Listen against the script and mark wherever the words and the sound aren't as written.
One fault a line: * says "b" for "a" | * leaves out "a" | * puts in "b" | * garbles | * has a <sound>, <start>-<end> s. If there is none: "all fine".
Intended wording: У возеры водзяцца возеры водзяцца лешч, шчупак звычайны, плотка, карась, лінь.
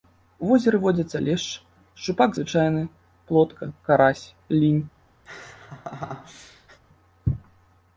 * leaves out "возеры водзяцца"
* has a laugh, 5.3-6.8 s